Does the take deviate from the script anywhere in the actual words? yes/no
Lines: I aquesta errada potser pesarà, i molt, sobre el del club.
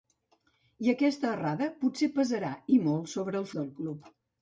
no